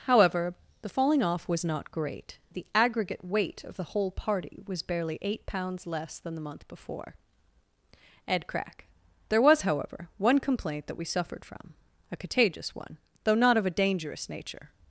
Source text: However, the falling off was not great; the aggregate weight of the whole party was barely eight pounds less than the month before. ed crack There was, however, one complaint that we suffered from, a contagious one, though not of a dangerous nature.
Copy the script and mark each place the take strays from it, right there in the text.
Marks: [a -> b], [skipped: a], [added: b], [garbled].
However, the falling off was not great; the aggregate weight of the whole party was barely eight pounds less than the month before. ed crack There was, however, one complaint that we suffered from, a contagious one, though not of a dangerous nature.